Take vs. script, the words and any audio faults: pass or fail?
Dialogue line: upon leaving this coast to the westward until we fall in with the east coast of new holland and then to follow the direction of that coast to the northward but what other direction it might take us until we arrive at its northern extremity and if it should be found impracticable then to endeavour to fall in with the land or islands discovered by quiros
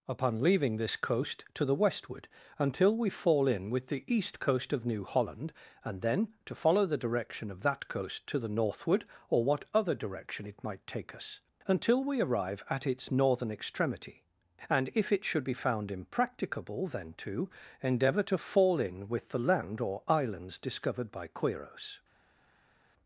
fail